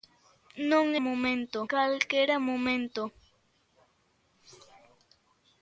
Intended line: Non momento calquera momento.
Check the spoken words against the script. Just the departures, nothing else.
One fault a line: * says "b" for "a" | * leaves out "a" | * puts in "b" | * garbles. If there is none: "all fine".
all fine